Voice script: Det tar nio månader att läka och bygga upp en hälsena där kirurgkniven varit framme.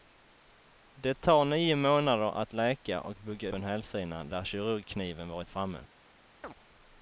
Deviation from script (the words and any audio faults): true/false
true